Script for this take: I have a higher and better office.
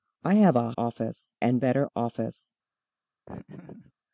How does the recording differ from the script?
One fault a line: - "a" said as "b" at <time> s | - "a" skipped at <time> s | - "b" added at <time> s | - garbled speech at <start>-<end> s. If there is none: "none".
- "higher" said as "office" at 0.8 s